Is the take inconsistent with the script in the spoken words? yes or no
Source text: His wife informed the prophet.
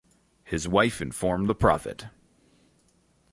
no